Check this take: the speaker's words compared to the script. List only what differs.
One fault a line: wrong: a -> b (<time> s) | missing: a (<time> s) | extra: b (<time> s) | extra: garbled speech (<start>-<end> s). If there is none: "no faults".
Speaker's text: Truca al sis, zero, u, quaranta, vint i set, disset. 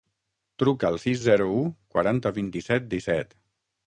no faults